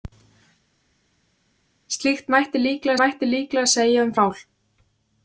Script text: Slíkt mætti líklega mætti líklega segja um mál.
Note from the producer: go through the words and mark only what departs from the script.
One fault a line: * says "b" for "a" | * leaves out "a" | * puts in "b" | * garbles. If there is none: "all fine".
all fine